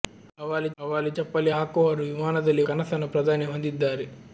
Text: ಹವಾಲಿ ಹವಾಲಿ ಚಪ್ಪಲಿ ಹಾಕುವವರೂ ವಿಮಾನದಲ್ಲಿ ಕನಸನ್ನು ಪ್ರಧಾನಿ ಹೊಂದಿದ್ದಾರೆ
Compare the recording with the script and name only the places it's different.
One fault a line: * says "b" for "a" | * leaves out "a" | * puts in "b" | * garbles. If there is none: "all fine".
all fine